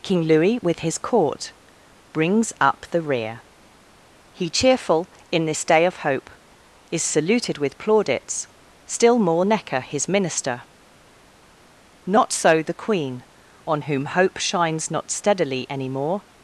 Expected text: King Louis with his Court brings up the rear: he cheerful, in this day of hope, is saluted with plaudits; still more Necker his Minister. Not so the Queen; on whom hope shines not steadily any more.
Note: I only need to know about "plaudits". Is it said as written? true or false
true